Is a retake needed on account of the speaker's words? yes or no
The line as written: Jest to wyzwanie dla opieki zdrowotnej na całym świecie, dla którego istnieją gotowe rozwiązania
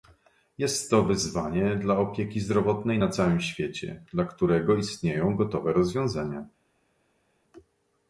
no